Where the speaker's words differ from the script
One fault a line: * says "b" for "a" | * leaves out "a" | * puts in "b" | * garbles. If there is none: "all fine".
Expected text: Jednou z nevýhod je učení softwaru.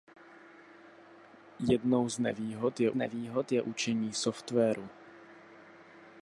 * puts in "nevýhod je"